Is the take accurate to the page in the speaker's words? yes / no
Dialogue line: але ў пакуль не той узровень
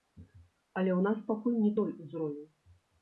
no